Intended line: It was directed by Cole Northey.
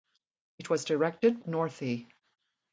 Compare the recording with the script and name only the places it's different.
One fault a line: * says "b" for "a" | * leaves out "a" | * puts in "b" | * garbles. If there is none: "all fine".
* leaves out "by Cole"